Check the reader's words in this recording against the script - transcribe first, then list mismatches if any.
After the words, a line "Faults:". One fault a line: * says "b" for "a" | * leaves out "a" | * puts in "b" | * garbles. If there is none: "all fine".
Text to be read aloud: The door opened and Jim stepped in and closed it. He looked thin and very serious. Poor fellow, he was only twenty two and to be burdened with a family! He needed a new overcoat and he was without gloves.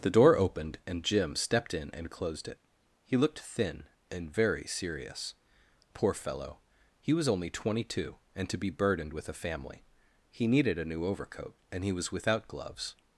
The door opened and Jim stepped in and closed it. He looked thin and very serious. Poor fellow, he was only twenty two and to be burdened with a family! He needed a new overcoat and he was without gloves.
Faults:
all fine